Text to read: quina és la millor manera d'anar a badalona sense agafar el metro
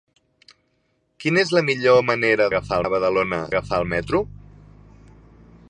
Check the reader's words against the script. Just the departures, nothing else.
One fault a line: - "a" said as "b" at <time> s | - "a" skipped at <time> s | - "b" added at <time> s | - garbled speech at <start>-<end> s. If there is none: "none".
- "d'anar" said as "agafar" at 2.5 s
- "sense" skipped at 3.4 s